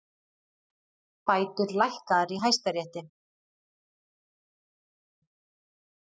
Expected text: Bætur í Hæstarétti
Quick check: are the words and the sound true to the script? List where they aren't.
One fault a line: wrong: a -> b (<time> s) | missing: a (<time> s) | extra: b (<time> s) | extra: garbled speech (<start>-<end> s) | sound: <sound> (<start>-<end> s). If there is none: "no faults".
extra: lækkaðar (1.8 s)